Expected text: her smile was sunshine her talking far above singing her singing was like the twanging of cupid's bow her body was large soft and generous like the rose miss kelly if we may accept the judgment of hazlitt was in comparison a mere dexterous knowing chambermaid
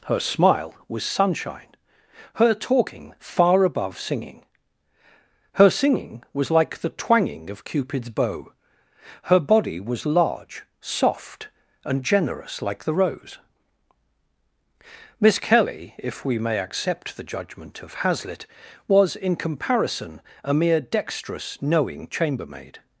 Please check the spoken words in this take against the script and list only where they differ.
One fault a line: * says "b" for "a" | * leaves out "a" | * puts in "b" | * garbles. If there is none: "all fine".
all fine